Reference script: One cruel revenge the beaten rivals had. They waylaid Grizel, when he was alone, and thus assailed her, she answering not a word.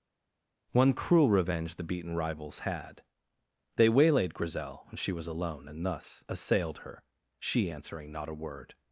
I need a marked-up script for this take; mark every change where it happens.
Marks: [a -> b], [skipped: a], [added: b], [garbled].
One cruel revenge the beaten rivals had. They waylaid Grizel, when [he -> she] was alone, and thus assailed her, she answering not a word.